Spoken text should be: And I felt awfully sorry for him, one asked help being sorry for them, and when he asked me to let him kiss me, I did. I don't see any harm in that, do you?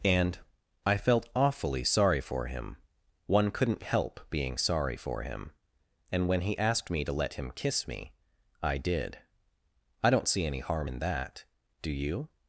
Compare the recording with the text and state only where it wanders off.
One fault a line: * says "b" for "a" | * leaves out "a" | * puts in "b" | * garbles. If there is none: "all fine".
* says "couldn't" for "asked"
* says "him" for "them"